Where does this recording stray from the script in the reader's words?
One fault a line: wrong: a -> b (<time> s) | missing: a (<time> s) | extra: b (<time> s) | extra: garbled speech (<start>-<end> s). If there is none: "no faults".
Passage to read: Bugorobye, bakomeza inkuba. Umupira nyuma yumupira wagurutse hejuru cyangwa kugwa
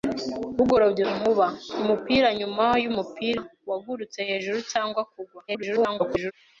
missing: bakomeza (1.0 s)
extra: garbled speech (5.5-6.3 s)